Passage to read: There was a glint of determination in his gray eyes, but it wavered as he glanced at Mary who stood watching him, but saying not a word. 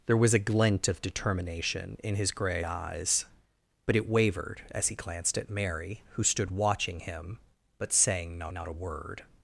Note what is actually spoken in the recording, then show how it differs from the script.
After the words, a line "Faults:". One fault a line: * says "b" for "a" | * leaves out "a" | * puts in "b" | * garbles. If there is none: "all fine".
There was a glint of determination in his gray eyes, but it wavered as he glanced at Mary who stood watching him, but saying not not a word.
Faults:
* puts in "not"